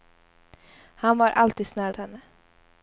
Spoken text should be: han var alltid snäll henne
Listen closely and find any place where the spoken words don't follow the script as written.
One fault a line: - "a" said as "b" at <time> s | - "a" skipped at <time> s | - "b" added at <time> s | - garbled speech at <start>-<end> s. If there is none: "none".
none